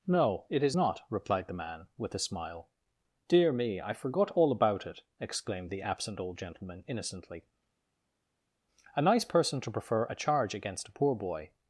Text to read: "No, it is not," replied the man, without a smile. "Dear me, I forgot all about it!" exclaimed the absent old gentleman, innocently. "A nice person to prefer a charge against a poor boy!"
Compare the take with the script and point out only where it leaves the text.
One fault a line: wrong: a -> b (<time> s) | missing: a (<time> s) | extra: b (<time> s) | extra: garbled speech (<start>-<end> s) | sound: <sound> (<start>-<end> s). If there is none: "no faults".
wrong: without -> with (2.0 s)